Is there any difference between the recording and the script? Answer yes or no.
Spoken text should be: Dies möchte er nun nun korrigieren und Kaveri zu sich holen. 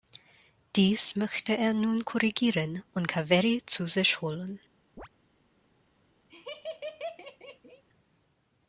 yes